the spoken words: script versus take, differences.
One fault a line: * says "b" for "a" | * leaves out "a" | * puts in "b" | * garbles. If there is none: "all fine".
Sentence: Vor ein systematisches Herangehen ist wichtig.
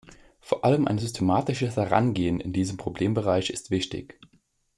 * puts in "allem"
* puts in "in diesem Problembereich"